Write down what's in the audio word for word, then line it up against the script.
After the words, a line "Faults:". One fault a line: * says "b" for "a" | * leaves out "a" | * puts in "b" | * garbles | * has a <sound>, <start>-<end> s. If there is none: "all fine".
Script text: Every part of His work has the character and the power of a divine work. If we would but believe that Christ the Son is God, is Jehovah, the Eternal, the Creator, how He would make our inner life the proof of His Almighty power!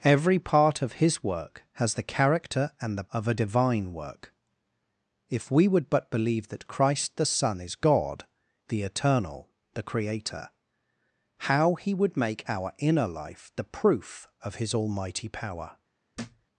Every part of His work has the character and the of a divine work. If we would but believe that Christ the Son is God, the Eternal, the Creator, how He would make our inner life the proof of His Almighty power!
Faults:
* leaves out "power"
* leaves out "is Jehovah"
* has a thud, 16.1-16.5 s